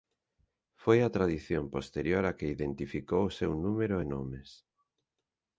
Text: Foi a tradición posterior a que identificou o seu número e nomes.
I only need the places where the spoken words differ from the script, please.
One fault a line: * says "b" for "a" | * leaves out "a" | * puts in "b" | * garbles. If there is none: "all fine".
all fine